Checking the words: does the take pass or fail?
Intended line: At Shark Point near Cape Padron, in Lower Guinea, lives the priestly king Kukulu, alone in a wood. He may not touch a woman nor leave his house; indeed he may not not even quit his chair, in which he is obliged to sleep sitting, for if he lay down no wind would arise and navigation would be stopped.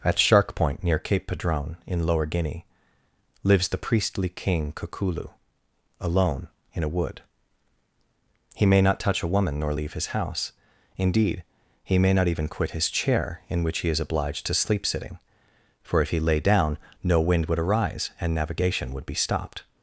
fail